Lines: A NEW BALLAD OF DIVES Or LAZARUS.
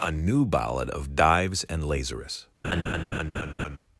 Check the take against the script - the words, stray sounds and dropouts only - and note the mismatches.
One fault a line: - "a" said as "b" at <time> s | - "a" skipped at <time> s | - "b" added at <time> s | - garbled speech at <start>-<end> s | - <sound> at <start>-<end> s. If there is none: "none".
- "Or" said as "AND" at 1.7 s
- laugh at 2.6-3.8 s